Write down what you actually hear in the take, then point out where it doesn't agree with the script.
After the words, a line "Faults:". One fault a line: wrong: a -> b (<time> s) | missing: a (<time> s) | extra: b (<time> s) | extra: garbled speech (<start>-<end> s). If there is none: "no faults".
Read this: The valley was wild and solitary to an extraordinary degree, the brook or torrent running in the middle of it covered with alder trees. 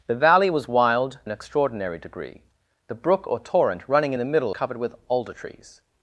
The valley was wild an extraordinary degree, the brook or torrent running in the middle covered with alder trees.
Faults:
missing: and solitary to (1.2 s)
missing: of it (4.5 s)